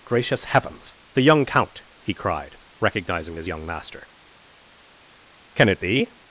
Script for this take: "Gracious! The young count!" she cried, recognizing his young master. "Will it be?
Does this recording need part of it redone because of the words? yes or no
yes